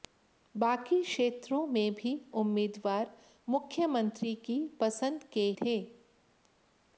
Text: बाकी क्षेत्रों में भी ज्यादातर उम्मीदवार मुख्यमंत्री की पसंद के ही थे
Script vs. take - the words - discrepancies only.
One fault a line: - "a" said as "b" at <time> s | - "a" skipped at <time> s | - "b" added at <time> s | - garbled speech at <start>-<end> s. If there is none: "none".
- "ज्यादातर" skipped at 2.1 s
- "ही" skipped at 5.5 s